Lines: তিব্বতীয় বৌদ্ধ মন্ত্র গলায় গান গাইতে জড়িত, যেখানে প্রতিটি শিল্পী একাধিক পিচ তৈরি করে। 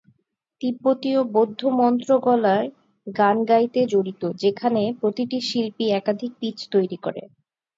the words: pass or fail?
pass